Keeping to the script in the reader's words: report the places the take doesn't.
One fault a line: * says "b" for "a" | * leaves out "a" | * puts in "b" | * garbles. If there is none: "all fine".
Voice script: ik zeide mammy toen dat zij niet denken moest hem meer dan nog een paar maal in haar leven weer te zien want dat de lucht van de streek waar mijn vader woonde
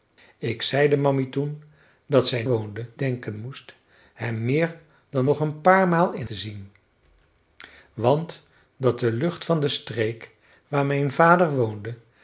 * says "woonde" for "niet"
* leaves out "haar leven weer"